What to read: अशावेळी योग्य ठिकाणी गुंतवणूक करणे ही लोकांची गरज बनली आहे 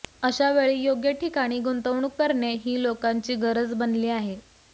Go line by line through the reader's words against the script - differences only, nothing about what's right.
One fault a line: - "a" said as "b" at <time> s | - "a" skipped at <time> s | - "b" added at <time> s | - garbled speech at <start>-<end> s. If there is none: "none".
none